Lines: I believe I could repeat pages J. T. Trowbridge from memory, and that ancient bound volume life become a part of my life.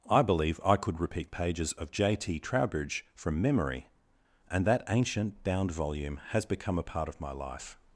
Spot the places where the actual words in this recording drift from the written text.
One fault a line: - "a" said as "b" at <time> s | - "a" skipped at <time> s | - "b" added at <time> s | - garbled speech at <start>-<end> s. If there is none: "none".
- "of" added at 1.7 s
- "life" said as "has" at 6.3 s